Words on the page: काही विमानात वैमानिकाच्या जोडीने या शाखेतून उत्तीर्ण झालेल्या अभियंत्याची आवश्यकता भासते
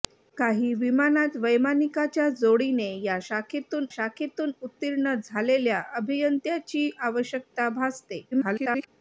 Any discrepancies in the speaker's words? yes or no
yes